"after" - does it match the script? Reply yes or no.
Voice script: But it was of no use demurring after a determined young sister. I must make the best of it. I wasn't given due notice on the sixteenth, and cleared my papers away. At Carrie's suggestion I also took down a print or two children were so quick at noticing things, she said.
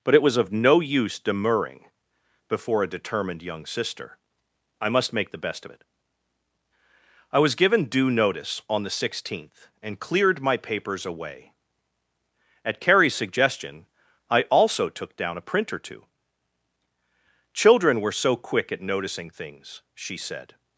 no